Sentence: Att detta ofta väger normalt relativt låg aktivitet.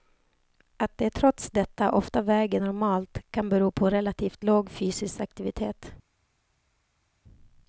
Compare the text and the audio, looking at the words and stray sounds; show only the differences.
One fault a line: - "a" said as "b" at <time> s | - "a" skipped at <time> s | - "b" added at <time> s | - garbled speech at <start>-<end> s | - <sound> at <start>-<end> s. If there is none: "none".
- "de trots" added at 1.0 s
- "kan bero på" added at 3.3 s
- "fysisk" added at 4.7 s